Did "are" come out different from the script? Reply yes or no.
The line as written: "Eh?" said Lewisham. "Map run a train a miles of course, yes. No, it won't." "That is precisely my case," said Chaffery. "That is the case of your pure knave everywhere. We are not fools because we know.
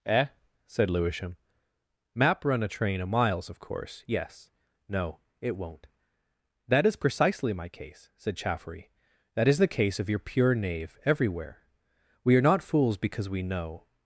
no